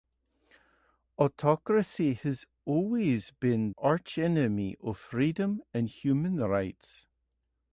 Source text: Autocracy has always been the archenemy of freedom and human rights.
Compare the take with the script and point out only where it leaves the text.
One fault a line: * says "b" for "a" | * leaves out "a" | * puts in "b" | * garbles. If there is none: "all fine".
* leaves out "the"